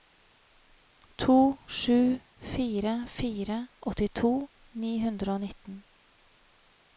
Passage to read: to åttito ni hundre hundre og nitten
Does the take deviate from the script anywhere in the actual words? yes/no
yes